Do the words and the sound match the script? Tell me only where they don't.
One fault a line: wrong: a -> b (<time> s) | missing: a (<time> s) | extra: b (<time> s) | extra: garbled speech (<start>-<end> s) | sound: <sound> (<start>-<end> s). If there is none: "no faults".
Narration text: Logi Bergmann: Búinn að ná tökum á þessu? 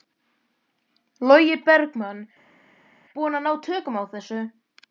no faults